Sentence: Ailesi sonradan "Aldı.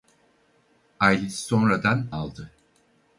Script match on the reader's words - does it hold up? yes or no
yes